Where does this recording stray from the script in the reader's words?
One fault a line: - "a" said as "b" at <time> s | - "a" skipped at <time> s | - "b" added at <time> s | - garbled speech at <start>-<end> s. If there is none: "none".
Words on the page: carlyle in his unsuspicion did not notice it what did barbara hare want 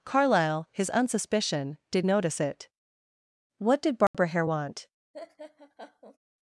- "in" skipped at 0.7 s
- "not" skipped at 2.0 s